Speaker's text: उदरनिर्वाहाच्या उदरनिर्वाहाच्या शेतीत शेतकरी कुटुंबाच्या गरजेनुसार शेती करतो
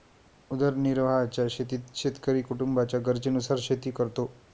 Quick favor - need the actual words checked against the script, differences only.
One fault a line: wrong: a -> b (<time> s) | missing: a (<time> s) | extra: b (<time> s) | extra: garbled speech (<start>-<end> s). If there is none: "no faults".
missing: उदरनिर्वाहाच्या (1.4 s)